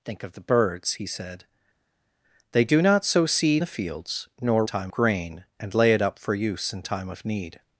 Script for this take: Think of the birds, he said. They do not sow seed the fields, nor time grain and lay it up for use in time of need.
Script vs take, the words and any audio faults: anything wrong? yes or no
no